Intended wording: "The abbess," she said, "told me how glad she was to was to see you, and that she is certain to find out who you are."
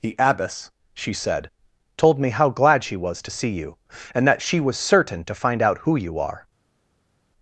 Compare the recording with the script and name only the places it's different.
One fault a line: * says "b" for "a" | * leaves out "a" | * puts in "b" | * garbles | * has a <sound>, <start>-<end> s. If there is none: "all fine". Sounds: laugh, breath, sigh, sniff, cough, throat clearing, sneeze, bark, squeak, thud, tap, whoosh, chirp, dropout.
* leaves out "was to"
* says "was" for "is"